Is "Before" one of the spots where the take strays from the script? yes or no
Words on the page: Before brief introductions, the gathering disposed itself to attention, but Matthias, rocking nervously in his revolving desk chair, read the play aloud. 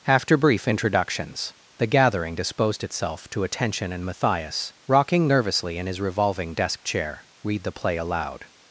yes